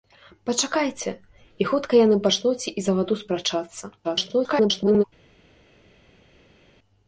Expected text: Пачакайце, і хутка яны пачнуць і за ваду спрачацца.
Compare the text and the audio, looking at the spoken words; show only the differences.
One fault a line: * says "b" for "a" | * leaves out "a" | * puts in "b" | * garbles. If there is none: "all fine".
* garbles